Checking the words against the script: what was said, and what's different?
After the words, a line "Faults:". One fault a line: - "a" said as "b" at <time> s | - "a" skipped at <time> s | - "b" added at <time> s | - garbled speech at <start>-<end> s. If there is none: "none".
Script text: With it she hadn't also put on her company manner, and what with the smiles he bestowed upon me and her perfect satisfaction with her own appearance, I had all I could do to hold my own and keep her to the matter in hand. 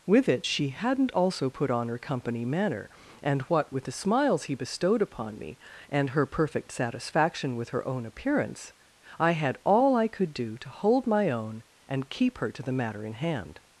With it she hadn't also put on her company manner, and what with the smiles he bestowed upon me and her perfect satisfaction with her own appearance, I had all I could do to hold my own and keep her to the matter in hand.
Faults:
none